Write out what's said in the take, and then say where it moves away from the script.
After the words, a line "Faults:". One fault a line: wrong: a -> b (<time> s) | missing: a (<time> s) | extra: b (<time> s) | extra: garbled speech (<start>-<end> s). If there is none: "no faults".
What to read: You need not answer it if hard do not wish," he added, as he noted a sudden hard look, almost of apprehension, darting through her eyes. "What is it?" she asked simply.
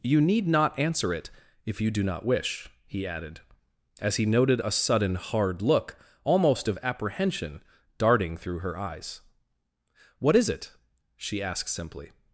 You need not answer it if you do not wish," he added, as he noted a sudden hard look, almost of apprehension, darting through her eyes. "What is it?" she asked simply.
Faults:
wrong: hard -> you (1.8 s)